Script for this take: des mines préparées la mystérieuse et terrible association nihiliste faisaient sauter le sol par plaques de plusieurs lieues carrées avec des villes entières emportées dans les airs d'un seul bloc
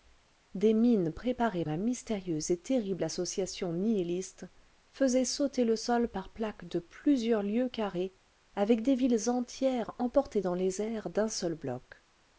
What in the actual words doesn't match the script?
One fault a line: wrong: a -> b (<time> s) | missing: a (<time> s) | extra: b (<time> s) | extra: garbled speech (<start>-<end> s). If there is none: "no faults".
no faults